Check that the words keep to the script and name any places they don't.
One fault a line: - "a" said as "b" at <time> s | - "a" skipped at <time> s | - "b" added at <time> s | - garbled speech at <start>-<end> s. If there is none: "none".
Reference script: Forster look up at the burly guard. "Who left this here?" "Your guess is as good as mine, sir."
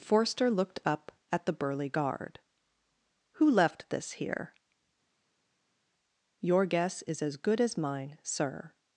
- "look" said as "looked" at 0.5 s